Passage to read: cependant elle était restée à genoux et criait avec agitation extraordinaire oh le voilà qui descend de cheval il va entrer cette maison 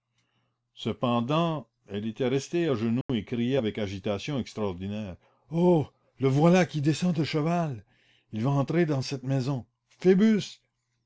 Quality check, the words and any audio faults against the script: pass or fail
fail